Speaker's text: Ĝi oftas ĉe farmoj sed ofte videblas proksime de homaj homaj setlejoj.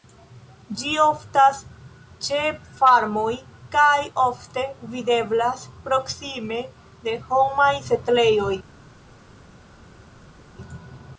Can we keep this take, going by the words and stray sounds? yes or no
no